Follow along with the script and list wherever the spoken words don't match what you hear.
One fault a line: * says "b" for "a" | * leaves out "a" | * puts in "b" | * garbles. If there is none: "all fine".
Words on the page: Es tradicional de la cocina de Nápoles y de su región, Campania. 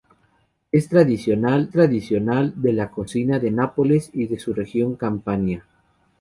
* puts in "tradicional"